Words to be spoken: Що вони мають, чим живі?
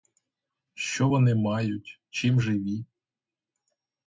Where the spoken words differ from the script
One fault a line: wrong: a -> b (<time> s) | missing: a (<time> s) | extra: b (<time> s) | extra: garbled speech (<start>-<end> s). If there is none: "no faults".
no faults